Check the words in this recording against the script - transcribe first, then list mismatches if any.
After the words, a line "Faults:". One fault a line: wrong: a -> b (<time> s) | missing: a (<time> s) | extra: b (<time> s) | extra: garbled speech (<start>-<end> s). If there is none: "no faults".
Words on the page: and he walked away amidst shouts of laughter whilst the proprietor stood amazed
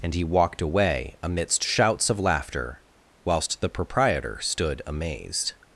and he walked away amidst shouts of laughter whilst the proprietor stood amazed
Faults:
no faults